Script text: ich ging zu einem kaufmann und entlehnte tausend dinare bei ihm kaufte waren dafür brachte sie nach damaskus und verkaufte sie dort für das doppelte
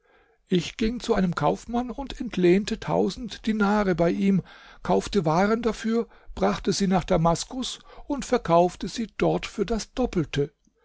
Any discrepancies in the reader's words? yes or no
no